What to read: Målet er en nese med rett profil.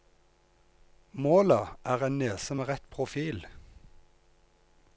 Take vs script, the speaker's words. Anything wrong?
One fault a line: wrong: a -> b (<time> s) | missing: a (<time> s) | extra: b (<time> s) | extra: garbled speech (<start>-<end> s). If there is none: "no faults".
no faults